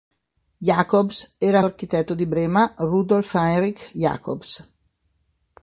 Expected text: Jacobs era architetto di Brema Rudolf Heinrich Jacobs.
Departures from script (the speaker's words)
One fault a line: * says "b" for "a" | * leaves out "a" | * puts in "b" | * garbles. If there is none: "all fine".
all fine